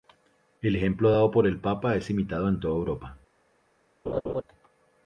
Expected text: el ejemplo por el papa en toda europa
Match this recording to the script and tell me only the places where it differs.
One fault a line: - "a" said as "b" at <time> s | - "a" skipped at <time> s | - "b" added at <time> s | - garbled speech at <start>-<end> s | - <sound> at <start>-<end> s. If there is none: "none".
- "dado" added at 1.1 s
- "es imitado" added at 2.0 s
- laugh at 4.1-4.4 s